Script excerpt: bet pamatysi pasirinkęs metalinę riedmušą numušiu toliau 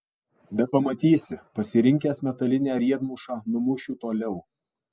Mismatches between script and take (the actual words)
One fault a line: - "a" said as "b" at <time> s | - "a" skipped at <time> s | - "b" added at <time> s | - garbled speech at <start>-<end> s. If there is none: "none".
none